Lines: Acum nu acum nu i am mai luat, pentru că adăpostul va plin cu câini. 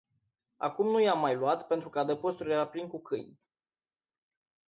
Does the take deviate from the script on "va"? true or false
true